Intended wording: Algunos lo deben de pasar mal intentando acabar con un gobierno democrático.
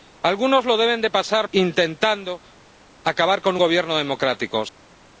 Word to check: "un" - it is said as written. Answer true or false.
false